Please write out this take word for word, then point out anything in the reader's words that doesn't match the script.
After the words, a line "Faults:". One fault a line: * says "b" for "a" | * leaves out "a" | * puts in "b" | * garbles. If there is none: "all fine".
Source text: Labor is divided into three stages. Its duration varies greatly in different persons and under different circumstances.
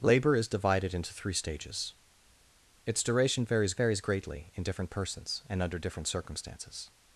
Labor is divided into three stages. Its duration varies varies greatly in different persons and under different circumstances.
Faults:
* puts in "varies"